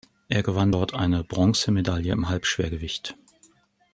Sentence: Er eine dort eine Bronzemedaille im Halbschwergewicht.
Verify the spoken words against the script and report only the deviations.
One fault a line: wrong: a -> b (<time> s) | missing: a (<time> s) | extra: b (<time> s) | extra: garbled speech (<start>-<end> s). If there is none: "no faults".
wrong: eine -> gewann (0.4 s)